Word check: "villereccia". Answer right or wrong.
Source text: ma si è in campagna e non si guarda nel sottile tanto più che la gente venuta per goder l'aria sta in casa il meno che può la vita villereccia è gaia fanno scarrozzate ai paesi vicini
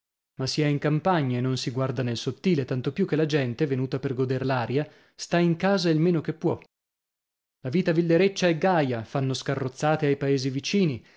right